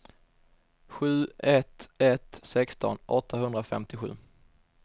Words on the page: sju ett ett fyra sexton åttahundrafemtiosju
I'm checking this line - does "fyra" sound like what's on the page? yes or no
no